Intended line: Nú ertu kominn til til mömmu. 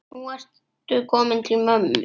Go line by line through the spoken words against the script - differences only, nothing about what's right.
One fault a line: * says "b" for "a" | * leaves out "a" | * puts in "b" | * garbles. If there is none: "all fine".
* leaves out "til"